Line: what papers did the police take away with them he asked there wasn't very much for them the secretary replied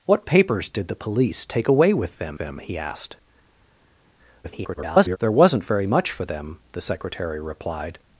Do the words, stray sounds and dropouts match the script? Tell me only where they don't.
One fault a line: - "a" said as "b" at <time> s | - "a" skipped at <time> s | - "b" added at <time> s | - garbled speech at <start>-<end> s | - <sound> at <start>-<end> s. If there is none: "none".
- "them" added at 2.4 s
- garbled speech at 4.4-5.2 s